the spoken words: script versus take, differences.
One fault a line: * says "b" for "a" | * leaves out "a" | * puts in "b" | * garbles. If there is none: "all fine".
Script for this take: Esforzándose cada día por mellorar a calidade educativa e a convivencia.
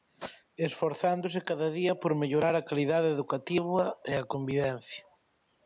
all fine